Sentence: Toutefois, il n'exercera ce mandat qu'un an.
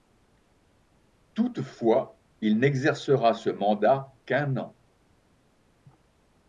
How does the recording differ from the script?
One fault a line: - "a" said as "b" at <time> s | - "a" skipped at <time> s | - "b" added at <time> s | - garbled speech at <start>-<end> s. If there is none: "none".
none